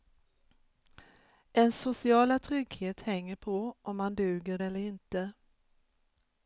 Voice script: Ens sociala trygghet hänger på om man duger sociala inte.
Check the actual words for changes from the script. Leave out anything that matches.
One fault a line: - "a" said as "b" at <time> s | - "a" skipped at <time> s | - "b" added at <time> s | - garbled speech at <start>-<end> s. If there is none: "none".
- "sociala" said as "eller" at 4.6 s